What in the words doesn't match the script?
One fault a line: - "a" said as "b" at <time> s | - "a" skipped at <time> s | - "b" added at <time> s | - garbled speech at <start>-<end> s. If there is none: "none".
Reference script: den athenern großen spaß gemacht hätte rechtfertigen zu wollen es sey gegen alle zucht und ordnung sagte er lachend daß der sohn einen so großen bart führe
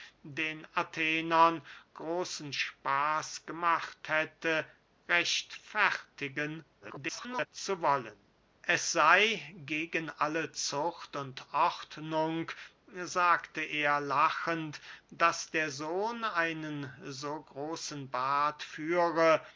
- garbled speech at 6.8-7.5 s